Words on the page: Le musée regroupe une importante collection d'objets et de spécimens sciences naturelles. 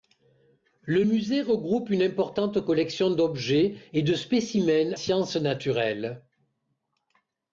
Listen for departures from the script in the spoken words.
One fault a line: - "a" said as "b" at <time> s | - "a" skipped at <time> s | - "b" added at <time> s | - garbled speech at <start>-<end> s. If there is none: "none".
none